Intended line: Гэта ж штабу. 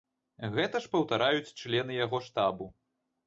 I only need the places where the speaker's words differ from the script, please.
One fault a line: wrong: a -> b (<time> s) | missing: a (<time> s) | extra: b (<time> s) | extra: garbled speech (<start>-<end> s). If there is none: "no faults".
extra: паўтараюць члены яго (0.9 s)